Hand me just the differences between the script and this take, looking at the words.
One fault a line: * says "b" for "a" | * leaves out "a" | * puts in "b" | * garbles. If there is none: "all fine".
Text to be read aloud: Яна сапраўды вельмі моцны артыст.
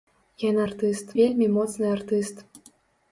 * says "артыст" for "сапраўды"